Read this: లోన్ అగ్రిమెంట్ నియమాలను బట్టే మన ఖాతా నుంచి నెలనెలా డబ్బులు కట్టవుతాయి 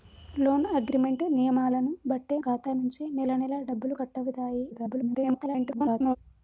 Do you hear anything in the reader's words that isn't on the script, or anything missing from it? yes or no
yes